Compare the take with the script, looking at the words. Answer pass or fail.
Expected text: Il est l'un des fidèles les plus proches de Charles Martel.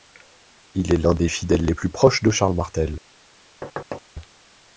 pass